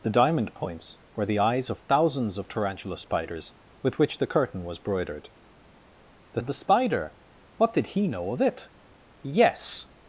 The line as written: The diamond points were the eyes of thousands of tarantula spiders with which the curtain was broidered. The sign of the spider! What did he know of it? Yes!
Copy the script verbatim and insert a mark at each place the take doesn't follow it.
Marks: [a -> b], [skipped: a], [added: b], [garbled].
The diamond points were the eyes of thousands of tarantula spiders with which the curtain was broidered. The [skipped: sign] of the spider! What did he know of it? Yes!